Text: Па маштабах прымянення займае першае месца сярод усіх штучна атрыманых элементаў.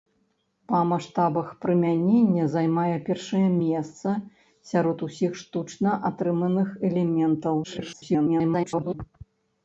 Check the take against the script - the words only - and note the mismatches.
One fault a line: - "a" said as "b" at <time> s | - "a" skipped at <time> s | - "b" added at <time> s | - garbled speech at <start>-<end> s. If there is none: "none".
- garbled speech at 7.6-8.9 s